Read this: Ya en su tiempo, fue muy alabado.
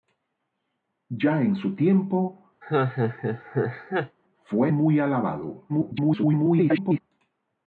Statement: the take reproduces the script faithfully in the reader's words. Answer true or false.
false